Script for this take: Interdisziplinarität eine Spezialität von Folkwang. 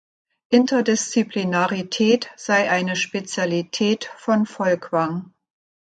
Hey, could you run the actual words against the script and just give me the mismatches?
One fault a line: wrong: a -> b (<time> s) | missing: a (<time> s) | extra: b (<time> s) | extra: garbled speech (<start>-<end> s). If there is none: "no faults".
extra: sei (2.4 s)